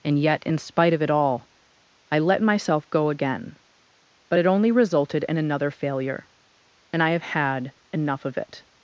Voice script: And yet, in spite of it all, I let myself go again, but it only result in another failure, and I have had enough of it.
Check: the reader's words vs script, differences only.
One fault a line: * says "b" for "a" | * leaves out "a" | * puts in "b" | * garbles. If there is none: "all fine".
* says "resulted" for "result"